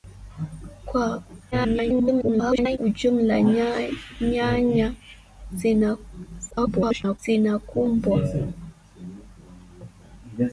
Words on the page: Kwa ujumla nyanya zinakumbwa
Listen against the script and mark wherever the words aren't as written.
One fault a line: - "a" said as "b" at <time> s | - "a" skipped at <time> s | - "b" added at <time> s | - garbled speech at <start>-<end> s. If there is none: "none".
- garbled speech at 1.5-2.8 s
- garbled speech at 6.5-7.2 s